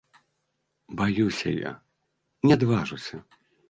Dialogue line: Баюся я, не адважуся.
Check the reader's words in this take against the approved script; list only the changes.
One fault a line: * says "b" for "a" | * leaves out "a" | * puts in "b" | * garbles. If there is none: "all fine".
all fine